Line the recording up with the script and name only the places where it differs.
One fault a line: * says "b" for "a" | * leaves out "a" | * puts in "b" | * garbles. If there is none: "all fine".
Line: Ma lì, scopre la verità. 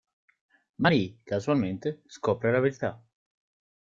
* puts in "casualmente"